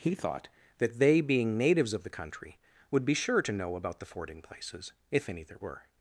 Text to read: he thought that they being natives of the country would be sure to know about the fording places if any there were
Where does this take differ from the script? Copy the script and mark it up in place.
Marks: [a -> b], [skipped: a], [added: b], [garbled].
he thought that they being natives of the country would be sure to know about the fording places if any there were